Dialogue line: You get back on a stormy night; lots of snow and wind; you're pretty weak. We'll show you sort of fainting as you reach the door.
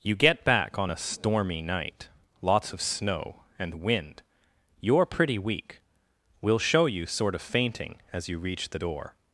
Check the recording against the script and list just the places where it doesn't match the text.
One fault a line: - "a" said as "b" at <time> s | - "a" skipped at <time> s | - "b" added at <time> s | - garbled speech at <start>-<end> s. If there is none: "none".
none